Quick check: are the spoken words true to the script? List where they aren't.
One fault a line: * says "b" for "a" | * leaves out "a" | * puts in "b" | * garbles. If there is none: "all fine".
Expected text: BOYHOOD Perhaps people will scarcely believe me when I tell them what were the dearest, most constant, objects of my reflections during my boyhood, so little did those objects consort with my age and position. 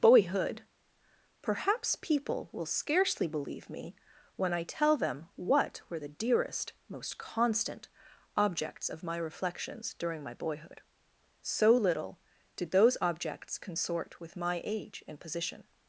all fine